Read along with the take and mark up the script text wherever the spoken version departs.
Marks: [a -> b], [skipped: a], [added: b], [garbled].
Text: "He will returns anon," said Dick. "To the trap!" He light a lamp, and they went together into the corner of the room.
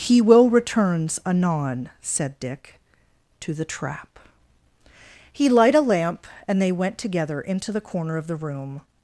"He will returns anon," said Dick. "To the trap!" He light a lamp, and they went together into the corner of the room.